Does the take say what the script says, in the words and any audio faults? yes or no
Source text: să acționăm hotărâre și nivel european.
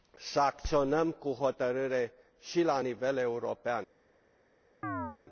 no